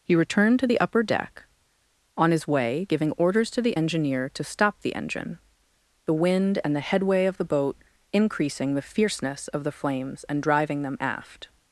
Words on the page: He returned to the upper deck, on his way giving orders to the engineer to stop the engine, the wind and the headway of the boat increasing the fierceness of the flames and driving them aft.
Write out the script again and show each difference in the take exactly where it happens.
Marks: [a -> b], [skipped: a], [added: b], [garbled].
He returned to the upper deck, on his way giving orders to the engineer to stop the engine, the wind and the headway of the boat increasing the fierceness of the flames and driving them aft.